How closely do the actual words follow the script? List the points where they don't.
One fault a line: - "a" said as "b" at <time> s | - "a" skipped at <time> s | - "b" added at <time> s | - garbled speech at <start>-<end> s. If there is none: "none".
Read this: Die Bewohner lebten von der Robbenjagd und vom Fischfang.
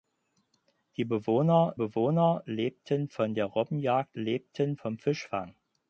- "Bewohner" added at 1.7 s
- "und" said as "lebten" at 4.1 s